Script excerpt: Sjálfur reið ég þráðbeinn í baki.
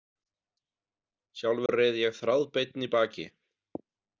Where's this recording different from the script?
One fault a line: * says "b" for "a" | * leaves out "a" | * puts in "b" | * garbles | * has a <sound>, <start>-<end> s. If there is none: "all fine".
* has a dropout, 1.7-1.7 s